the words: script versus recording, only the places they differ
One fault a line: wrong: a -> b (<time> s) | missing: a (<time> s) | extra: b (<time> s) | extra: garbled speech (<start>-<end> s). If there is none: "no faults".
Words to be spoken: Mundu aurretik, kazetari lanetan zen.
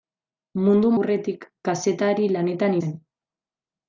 no faults